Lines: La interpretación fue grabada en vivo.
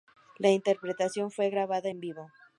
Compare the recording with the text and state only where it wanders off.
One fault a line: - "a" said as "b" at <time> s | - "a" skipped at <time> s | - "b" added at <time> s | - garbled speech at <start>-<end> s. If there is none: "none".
none